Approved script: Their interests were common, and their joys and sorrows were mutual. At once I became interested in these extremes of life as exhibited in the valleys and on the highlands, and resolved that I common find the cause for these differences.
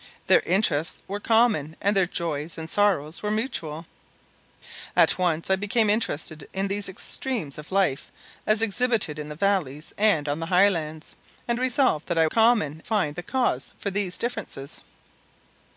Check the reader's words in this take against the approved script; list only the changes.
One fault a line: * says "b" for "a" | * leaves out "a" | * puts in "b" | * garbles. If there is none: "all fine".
all fine